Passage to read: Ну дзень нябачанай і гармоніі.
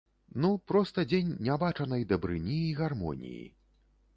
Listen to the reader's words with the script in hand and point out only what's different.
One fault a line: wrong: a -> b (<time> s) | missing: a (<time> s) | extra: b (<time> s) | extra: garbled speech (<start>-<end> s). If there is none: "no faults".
extra: проста (0.7 s)
extra: дабрыні (2.1 s)